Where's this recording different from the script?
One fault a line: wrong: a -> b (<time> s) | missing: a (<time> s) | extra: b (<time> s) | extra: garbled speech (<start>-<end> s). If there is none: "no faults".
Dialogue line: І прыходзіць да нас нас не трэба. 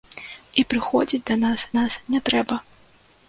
no faults